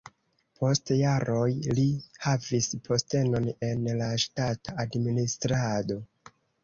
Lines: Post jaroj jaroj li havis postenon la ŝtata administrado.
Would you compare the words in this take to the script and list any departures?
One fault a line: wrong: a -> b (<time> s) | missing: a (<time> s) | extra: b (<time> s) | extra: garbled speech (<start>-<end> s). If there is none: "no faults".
missing: jaroj (1.5 s)
extra: en (3.7 s)